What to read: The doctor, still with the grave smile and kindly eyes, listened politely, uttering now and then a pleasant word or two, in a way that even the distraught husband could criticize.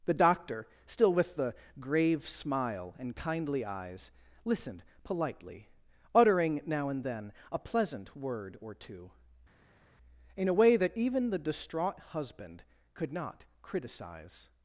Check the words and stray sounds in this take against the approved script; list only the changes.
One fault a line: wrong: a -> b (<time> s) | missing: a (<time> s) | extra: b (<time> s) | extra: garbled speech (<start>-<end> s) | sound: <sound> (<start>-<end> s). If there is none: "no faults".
extra: not (13.1 s)